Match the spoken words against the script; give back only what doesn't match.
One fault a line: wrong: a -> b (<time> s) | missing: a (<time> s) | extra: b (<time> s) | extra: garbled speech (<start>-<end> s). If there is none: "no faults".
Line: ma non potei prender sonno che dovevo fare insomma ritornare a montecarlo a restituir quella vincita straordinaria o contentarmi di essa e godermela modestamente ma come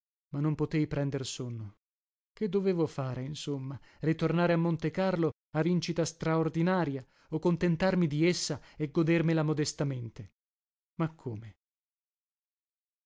missing: restituir quella (5.6 s)